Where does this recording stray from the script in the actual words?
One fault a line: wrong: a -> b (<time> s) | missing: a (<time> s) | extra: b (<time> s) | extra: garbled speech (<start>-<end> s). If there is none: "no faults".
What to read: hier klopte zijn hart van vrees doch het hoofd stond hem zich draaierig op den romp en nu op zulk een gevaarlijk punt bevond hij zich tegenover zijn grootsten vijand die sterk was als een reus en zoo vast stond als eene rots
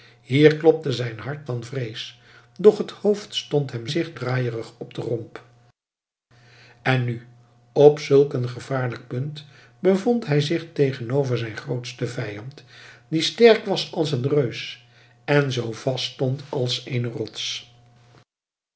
no faults